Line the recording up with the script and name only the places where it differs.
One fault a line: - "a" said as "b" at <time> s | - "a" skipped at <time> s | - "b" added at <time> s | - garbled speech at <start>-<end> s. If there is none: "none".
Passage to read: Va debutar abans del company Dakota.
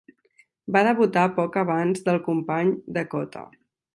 - "poc" added at 1.4 s